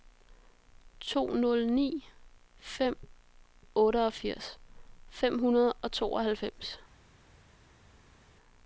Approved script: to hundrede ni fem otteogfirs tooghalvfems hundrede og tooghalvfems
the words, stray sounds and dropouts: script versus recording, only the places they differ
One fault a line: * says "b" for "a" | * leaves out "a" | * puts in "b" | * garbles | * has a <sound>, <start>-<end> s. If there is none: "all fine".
* says "nul" for "hundrede"
* says "fem" for "tooghalvfems"